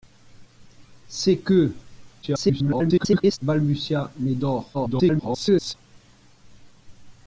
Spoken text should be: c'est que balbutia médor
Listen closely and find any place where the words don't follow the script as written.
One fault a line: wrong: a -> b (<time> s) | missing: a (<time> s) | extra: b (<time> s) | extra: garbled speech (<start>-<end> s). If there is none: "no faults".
extra: garbled speech (2.2-3.4 s)
extra: garbled speech (4.7-5.7 s)